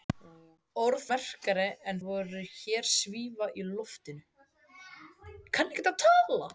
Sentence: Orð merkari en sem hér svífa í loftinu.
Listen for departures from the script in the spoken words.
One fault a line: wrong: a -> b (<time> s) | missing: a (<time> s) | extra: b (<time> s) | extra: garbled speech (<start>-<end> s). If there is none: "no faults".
no faults